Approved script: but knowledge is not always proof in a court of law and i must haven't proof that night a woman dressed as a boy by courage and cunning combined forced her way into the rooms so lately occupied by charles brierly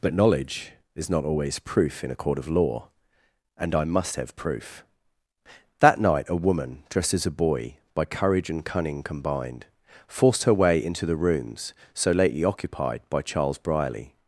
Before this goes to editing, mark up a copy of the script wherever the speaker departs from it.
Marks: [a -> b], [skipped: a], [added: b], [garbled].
but knowledge is not always proof in a court of law and i must [haven't -> have] proof that night a woman dressed as a boy by courage and cunning combined forced her way into the rooms so lately occupied by charles brierly